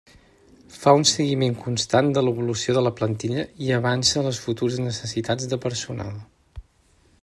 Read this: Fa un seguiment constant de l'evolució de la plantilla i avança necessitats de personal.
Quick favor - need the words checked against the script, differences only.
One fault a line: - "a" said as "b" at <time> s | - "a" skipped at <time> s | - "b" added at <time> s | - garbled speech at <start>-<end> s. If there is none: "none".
- "les futures" added at 4.3 s